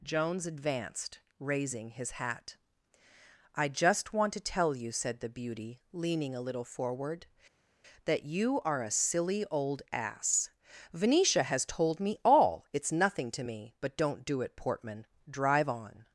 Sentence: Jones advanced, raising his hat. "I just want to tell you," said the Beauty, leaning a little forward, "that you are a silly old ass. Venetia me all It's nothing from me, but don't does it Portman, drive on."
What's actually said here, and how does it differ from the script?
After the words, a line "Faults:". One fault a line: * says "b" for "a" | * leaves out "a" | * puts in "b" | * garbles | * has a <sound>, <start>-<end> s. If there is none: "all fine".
Jones advanced, raising his hat. "I just want to tell you," said the Beauty, leaning a little forward, "that you are a silly old ass. Venetia has told me all It's nothing to me, but don't do it Portman, drive on."
Faults:
* puts in "has told"
* says "to" for "from"
* says "do" for "does"